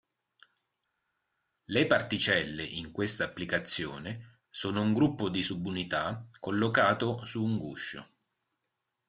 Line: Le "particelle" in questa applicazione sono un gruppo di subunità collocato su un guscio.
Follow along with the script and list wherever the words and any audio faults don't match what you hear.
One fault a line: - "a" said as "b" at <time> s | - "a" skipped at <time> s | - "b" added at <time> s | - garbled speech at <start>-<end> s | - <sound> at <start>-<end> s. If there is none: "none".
none